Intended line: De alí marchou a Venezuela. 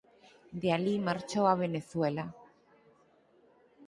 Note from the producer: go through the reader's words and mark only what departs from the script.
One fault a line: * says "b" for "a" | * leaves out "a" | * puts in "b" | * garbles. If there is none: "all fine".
all fine